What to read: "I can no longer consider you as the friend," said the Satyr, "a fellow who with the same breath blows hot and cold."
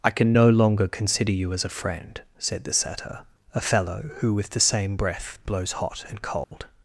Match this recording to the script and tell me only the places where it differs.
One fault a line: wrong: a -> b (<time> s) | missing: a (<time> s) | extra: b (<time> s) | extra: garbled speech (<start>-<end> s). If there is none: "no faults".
wrong: the -> a (1.7 s)